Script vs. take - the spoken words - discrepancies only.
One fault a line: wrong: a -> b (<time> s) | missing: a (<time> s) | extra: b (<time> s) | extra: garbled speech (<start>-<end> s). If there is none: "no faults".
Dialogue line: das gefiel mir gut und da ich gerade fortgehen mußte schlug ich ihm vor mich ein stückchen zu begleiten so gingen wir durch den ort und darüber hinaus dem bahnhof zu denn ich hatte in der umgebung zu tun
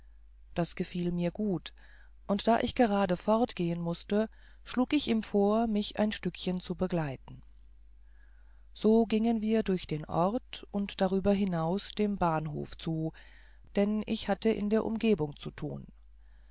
no faults